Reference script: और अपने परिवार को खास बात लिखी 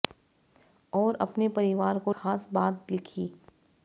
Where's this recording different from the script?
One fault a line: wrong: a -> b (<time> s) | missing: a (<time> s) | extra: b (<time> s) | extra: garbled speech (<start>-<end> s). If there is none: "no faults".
no faults